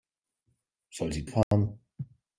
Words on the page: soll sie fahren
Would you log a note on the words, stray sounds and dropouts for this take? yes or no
yes